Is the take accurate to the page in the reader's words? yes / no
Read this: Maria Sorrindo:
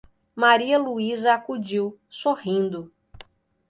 no